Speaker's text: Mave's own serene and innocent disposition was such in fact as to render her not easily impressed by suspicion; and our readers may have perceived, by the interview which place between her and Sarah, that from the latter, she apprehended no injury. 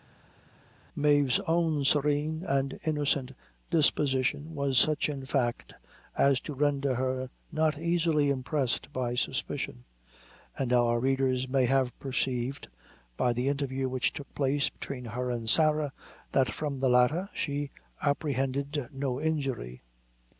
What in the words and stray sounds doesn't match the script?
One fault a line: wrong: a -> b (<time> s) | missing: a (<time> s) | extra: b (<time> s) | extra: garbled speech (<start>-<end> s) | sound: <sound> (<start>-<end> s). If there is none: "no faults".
extra: took (14.1 s)